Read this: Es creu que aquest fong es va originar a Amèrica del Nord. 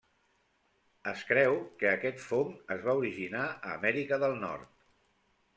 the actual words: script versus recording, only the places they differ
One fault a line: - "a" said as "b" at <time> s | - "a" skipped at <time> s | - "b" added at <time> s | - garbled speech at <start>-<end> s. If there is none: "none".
none